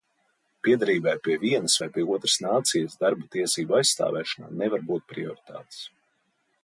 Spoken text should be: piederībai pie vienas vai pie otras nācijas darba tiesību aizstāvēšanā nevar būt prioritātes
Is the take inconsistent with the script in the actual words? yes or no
no